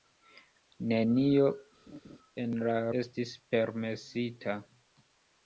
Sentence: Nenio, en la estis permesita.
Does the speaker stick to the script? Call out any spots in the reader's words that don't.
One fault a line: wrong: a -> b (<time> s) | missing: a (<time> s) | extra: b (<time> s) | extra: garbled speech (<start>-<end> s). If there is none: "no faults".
no faults